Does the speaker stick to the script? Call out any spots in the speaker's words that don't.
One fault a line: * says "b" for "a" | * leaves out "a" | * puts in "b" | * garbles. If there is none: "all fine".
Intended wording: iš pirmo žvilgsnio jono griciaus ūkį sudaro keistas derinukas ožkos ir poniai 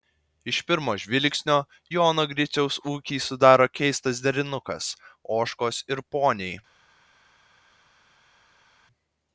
all fine